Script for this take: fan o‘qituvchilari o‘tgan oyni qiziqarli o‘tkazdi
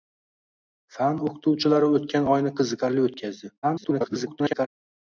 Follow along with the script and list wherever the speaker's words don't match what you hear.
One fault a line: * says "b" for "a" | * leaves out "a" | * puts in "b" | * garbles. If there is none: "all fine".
* garbles